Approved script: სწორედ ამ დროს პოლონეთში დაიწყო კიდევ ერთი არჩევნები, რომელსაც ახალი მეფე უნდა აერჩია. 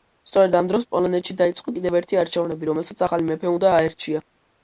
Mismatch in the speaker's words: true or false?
false